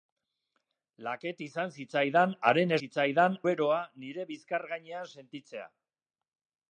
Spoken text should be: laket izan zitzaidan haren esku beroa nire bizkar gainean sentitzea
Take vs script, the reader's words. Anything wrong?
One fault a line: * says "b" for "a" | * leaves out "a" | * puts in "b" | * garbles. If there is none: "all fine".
* says "zitzaidan" for "esku"